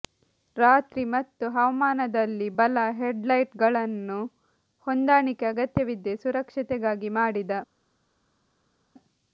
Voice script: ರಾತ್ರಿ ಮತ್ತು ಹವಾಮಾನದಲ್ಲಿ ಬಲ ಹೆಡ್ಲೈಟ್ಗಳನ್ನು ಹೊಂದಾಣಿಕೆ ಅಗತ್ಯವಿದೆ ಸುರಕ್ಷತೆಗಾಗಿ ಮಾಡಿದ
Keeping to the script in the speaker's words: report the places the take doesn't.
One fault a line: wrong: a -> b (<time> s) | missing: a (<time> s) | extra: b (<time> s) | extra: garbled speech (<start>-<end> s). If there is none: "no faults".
no faults